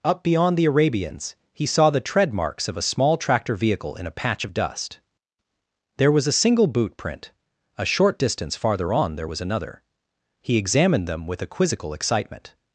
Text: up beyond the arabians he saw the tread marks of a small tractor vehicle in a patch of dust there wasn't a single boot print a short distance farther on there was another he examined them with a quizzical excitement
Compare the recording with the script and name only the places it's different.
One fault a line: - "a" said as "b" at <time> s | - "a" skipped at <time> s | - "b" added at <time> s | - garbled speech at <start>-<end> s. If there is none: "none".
- "wasn't" said as "was" at 6.1 s